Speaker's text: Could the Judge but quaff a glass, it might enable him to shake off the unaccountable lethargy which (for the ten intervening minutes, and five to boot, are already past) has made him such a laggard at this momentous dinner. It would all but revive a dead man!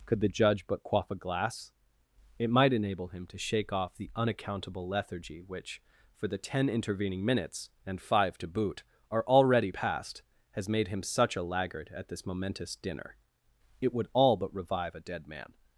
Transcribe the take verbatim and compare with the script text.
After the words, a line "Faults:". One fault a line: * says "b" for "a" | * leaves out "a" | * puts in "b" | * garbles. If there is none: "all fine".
Could the Judge but quaff a glass, it might enable him to shake off the unaccountable lethargy which (for the ten intervening minutes, and five to boot, are already past) has made him such a laggard at this momentous dinner. It would all but revive a dead man!
Faults:
all fine